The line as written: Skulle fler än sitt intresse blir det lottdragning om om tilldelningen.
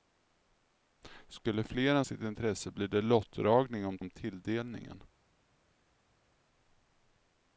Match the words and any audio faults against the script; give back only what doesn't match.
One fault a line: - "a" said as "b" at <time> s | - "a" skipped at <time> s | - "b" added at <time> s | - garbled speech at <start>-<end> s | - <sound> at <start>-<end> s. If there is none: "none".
none